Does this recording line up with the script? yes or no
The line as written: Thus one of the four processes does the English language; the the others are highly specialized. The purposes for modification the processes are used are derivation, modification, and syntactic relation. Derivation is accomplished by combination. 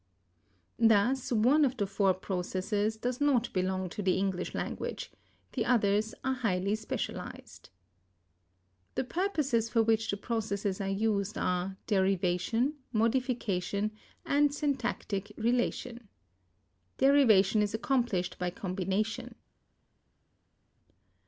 no